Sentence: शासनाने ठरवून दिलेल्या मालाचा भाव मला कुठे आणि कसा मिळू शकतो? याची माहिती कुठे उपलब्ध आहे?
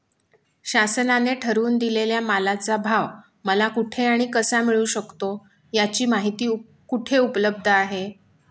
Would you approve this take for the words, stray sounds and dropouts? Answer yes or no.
yes